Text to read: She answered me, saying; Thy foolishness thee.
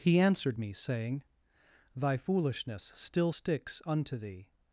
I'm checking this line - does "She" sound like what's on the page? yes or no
no